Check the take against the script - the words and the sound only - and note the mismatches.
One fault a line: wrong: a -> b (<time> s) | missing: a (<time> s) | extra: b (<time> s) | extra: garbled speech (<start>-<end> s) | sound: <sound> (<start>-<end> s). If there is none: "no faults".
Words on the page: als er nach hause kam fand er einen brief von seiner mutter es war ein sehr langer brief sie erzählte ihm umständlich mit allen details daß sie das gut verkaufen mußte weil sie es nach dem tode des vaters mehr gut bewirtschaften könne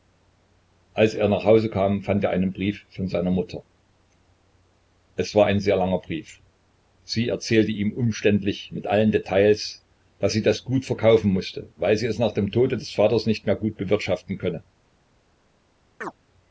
extra: nicht (13.3 s)
sound: chirp (16.0-16.2 s)